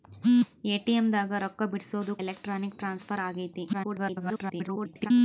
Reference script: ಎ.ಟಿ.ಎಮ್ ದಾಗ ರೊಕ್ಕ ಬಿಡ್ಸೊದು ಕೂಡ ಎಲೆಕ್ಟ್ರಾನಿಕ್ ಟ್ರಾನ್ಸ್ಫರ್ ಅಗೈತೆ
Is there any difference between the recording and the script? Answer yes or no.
yes